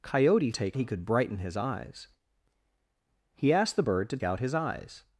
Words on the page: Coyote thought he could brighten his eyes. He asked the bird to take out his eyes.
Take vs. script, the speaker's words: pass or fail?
fail